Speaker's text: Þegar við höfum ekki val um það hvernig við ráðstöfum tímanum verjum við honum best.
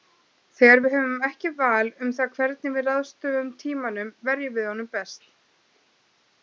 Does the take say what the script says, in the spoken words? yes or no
yes